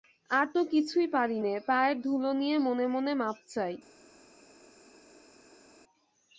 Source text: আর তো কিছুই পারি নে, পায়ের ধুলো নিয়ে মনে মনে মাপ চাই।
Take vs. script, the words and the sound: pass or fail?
pass